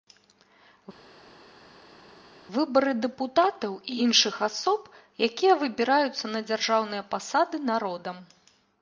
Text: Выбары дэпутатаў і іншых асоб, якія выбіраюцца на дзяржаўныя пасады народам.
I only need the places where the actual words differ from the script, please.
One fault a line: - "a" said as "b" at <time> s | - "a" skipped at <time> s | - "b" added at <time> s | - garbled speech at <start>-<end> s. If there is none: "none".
none